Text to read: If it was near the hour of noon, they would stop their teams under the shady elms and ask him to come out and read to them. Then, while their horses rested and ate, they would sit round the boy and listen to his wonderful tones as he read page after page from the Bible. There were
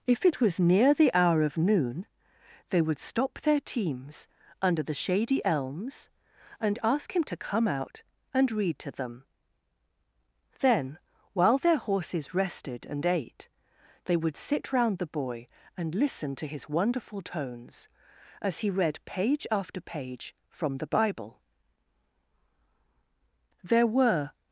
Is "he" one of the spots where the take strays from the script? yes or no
no